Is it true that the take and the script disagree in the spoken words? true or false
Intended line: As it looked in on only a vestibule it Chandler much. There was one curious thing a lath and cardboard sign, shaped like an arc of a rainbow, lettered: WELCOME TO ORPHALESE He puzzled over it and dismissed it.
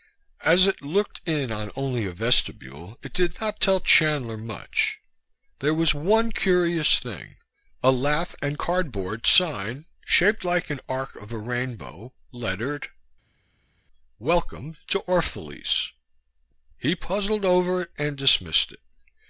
true